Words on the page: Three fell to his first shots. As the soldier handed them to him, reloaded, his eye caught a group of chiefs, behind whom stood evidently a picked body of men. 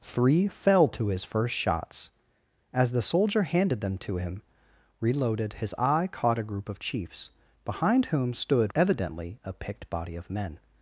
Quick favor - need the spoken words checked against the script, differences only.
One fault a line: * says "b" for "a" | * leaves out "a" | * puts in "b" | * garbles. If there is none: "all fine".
all fine